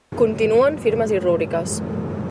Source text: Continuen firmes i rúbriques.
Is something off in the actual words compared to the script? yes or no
no